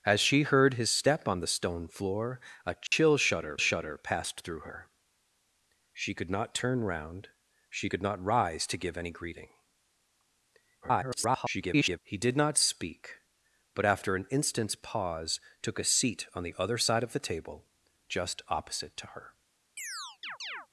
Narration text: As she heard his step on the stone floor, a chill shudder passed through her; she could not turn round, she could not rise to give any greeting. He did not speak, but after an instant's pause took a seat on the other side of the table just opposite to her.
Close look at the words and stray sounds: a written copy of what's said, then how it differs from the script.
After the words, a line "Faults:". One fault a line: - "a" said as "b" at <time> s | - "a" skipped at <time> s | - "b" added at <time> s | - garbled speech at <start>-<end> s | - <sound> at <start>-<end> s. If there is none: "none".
As she heard his step on the stone floor, a chill shudder shudder passed through her; she could not turn round, she could not rise to give any greeting. [garbled] He did not speak, but after an instant's pause took a seat on the other side of the table just opposite to her.
Faults:
- dropout at 2.9-2.9 s
- "shudder" added at 3.6 s
- garbled speech at 10.8-12.0 s
- chirp at 19.8-20.7 s